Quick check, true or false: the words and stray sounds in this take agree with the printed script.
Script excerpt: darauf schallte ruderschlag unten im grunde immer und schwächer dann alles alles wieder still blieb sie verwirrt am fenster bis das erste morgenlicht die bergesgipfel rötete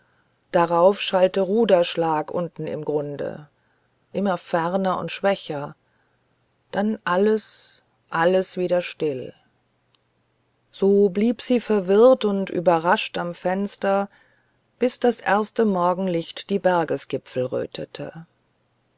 false